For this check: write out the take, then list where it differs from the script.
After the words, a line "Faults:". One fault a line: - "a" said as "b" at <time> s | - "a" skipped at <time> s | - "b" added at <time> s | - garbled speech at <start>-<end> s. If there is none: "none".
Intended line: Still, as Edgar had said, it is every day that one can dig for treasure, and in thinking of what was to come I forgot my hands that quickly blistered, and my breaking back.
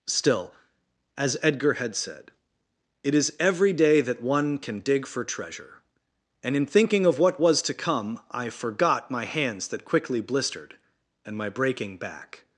Still, as Edgar had said, it is every day that one can dig for treasure, and in thinking of what was to come I forgot my hands that quickly blistered, and my breaking back.
Faults:
none